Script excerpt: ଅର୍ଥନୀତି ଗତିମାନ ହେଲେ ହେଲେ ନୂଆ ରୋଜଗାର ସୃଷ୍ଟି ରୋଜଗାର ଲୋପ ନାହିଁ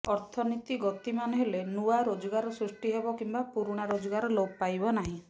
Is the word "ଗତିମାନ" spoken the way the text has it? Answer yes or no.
yes